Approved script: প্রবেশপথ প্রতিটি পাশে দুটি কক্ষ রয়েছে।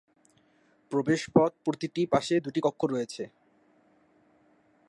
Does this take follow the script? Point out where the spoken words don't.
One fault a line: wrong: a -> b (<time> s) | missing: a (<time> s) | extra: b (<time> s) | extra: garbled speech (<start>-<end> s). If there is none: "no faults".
no faults